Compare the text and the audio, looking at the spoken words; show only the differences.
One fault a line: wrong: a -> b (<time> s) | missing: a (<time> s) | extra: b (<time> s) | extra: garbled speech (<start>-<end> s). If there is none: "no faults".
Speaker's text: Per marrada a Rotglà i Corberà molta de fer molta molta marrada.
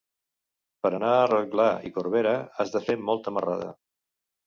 wrong: marrada -> anar (1.0 s)
wrong: molta -> has (2.6 s)
missing: molta (3.4 s)